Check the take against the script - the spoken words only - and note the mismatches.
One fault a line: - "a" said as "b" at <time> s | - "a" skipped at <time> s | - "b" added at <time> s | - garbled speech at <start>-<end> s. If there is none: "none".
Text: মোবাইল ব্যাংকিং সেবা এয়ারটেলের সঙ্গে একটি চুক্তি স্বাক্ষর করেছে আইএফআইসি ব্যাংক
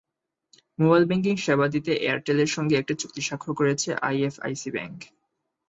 - "দিতে" added at 1.7 s